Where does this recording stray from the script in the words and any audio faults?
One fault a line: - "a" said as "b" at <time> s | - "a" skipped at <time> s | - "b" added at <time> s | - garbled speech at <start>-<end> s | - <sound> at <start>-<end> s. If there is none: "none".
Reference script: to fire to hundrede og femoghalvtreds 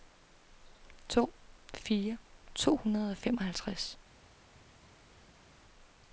none